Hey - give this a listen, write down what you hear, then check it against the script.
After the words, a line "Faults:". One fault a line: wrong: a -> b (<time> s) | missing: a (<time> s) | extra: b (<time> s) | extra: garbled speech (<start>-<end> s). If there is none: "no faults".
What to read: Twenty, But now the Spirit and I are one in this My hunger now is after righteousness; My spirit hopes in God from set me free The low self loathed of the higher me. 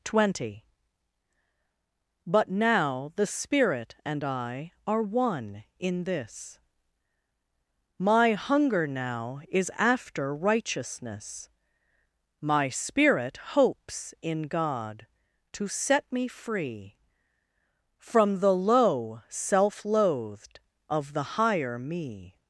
Twenty, But now the Spirit and I are one in this My hunger now is after righteousness; My spirit hopes in God to set me free From the low self loathed of the higher me.
Faults:
wrong: from -> to (15.5 s)
extra: From (18.0 s)